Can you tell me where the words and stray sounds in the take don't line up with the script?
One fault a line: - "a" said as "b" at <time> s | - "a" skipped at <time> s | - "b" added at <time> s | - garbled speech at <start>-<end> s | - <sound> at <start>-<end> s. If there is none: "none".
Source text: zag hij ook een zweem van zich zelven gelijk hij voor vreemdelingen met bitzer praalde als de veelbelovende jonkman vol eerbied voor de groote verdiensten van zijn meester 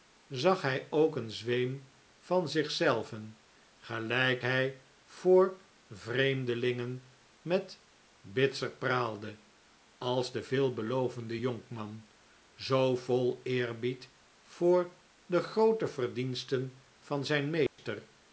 - "zoo" added at 12.5 s
- dropout at 17.7-17.8 s